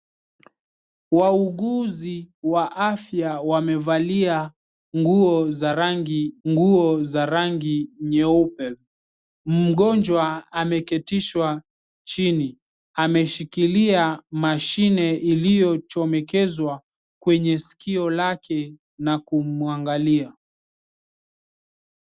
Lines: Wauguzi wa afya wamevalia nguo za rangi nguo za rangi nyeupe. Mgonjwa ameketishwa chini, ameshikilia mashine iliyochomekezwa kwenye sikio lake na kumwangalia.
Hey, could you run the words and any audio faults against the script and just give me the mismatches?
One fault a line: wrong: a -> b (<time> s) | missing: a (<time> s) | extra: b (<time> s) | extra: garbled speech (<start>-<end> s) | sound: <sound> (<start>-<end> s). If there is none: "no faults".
no faults